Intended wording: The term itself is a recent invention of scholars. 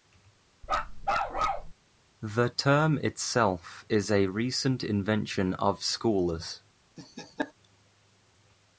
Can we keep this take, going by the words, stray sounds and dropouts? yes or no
no